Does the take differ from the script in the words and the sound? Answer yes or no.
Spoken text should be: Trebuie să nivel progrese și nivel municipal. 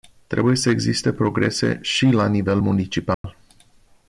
yes